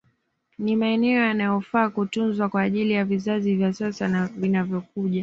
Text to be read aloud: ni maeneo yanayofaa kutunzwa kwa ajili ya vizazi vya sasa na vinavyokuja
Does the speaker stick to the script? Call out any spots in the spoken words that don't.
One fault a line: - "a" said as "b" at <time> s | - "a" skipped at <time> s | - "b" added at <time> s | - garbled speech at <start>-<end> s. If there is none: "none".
none